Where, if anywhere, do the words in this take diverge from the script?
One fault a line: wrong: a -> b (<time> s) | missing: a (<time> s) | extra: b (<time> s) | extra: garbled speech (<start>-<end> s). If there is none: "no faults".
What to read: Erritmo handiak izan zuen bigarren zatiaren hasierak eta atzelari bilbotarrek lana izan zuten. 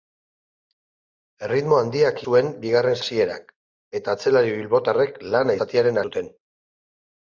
missing: izan (2.2 s)
missing: zatiaren (3.0 s)
wrong: izan -> zatiaren (5.6 s)